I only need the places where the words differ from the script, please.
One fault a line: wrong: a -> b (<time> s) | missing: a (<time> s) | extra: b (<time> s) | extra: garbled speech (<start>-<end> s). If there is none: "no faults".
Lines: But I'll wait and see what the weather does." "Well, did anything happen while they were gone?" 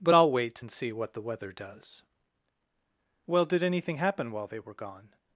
no faults